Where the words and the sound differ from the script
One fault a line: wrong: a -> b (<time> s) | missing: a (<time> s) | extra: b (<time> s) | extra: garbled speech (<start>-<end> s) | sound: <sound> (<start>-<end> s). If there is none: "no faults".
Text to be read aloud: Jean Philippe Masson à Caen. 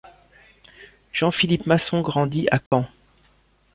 extra: grandit (2.0 s)
sound: dropout (2.7-2.7 s)